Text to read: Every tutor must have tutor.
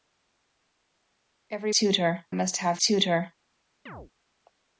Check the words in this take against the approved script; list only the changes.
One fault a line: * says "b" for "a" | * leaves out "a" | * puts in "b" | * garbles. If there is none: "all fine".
all fine